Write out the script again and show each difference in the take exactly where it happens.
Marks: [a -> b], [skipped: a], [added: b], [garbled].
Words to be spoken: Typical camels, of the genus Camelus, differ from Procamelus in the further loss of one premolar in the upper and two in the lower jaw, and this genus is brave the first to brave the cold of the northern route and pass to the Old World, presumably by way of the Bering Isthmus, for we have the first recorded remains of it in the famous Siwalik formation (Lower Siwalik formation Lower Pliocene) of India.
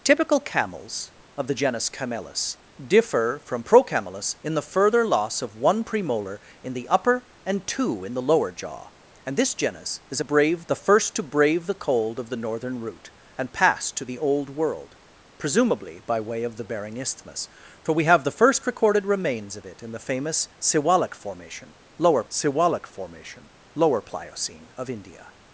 Typical camels, of the genus Camelus, differ from Procamelus in the further loss of one premolar in the upper and two in the lower jaw, and this genus is brave the first to brave the cold of the northern route and pass to the Old World, presumably by way of the Bering Isthmus, for we have the first recorded remains of it in the famous Siwalik formation (Lower Siwalik formation Lower Pliocene) of India.